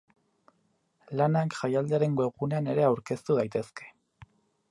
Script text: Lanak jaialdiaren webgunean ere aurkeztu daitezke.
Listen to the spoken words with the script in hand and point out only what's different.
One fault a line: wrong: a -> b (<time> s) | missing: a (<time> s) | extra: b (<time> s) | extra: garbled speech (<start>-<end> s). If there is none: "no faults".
no faults